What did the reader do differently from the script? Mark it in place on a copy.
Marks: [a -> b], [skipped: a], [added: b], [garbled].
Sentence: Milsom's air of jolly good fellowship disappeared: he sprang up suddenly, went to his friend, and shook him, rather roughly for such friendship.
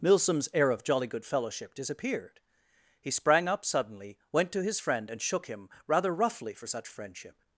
Milsom's air of jolly good fellowship disappeared: he sprang up suddenly, went to his friend, and shook him, rather roughly for such friendship.